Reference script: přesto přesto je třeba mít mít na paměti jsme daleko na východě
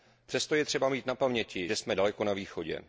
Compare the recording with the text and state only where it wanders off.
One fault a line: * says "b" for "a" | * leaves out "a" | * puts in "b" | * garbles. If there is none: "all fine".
* leaves out "přesto"
* leaves out "mít"
* puts in "že"